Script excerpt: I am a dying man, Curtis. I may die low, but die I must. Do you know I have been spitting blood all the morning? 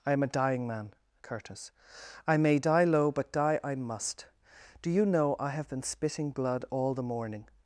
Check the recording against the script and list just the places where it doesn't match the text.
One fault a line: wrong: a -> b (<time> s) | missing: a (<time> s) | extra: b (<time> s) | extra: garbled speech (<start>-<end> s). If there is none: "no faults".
no faults